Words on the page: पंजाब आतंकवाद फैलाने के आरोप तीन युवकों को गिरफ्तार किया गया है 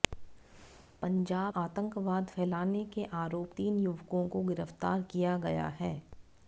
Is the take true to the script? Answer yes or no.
yes